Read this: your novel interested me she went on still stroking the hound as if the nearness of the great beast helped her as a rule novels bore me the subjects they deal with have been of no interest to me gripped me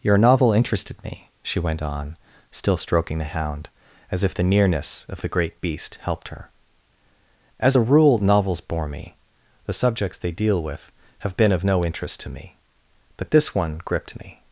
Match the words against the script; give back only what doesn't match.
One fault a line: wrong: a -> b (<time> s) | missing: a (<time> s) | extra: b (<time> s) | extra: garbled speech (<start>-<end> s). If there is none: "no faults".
extra: but this one (13.2 s)